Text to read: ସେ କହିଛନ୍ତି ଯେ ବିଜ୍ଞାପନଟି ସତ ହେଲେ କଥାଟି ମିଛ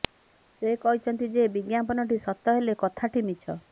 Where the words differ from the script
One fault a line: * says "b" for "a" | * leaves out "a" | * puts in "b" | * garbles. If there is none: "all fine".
all fine